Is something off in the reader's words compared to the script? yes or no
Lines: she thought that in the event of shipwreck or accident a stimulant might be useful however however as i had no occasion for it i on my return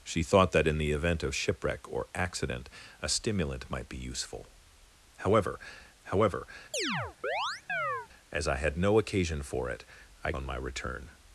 no